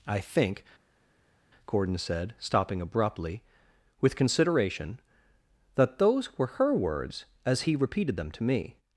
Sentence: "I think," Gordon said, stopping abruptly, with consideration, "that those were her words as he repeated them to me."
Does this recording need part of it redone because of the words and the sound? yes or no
no